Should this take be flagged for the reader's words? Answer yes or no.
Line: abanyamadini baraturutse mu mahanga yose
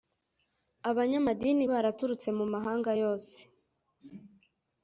no